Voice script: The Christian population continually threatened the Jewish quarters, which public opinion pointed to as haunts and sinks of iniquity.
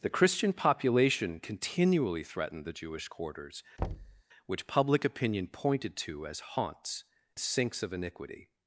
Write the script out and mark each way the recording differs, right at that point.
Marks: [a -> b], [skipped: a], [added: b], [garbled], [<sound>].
The Christian population continually threatened the Jewish quarters, [thud] which public opinion pointed to as haunts [skipped: and] sinks of iniquity.